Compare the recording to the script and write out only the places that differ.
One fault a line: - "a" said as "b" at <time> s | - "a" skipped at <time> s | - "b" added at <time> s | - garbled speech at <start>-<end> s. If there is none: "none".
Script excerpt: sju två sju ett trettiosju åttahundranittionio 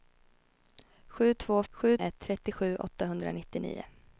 none